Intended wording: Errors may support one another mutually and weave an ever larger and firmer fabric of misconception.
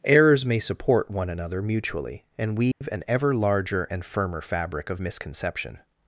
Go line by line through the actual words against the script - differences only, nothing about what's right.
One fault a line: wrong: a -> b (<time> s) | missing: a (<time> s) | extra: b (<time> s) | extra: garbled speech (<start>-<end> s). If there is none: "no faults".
no faults